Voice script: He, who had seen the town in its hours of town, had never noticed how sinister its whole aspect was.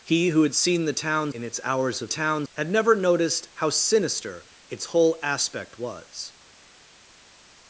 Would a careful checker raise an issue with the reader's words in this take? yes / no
no